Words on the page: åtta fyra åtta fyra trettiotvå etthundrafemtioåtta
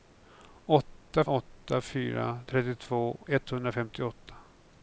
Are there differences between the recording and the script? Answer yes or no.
yes